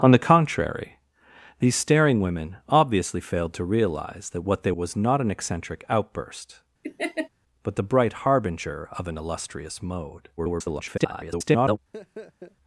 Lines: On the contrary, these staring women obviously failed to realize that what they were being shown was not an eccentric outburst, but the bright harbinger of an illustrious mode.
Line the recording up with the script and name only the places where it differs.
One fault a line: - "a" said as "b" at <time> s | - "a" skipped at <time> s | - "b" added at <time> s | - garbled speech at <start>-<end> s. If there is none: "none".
- "were being shown" skipped at 4.7 s
- garbled speech at 10.4-11.8 s